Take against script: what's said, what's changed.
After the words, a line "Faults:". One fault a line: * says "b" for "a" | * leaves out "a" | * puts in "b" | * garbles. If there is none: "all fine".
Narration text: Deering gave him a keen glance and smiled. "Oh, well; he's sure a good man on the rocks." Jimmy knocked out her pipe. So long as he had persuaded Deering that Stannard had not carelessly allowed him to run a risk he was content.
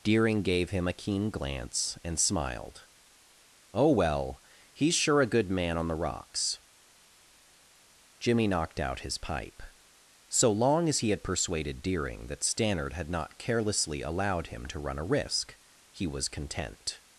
Deering gave him a keen glance and smiled. "Oh, well; he's sure a good man on the rocks." Jimmy knocked out his pipe. So long as he had persuaded Deering that Stannard had not carelessly allowed him to run a risk he was content.
Faults:
* says "his" for "her"